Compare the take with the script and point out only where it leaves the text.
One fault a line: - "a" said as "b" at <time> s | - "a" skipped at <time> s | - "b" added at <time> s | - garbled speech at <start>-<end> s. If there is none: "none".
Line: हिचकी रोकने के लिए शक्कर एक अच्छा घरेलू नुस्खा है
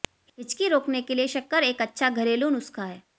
none